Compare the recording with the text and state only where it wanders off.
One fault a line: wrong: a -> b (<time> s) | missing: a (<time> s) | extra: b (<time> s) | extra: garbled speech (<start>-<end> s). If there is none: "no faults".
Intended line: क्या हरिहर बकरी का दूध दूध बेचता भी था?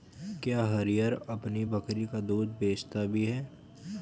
extra: अपनी (1.3 s)
missing: दूध (2.5 s)
wrong: था -> है (3.2 s)